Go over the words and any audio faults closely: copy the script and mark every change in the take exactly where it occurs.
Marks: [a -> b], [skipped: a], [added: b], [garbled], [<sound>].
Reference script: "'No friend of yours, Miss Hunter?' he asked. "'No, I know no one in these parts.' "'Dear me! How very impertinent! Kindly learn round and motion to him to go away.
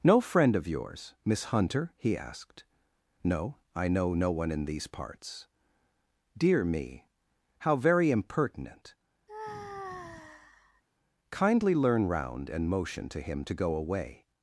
"'No friend of yours, Miss Hunter?' he asked. "'No, I know no one in these parts.' "'Dear me! How very impertinent! [sigh] Kindly learn round and motion to him to go away.